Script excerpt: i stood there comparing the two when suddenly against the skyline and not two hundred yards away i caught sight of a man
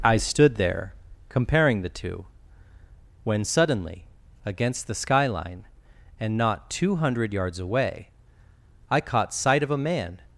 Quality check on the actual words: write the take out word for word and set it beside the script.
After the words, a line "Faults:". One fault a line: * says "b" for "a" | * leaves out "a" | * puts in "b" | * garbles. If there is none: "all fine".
i stood there comparing the two when suddenly against the skyline and not two hundred yards away i caught sight of a man
Faults:
all fine